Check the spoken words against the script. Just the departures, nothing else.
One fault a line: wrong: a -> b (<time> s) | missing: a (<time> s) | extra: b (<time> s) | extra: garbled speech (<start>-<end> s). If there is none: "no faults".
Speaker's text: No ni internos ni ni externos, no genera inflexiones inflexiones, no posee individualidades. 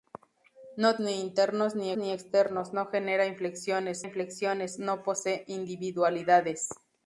no faults